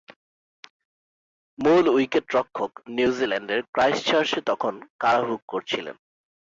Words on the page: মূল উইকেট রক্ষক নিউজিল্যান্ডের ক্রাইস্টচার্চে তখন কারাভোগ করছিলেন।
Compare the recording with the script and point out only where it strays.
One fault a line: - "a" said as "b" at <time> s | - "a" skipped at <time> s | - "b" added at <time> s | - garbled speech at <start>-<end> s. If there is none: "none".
none